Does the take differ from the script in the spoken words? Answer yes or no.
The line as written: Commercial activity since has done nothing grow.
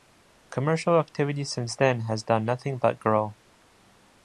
yes